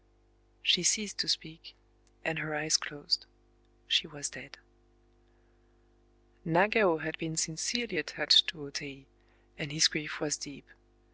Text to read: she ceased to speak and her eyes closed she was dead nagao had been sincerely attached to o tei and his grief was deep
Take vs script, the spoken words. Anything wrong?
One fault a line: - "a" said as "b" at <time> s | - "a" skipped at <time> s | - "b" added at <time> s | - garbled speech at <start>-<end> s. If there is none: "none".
none